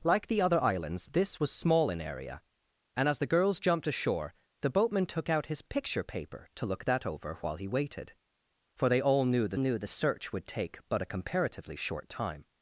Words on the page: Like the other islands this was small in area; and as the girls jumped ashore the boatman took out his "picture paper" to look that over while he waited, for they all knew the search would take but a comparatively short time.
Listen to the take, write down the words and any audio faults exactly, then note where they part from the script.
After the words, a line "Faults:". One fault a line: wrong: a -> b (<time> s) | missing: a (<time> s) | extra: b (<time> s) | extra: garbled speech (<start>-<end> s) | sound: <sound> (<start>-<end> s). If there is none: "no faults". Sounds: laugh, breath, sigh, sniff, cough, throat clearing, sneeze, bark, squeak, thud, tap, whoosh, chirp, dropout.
Like the other islands this was small in area; and as the girls jumped ashore the boatman took out his "picture paper" to look that over while he waited, for they all knew the knew the search would take but a comparatively short time.
Faults:
extra: knew the (9.6 s)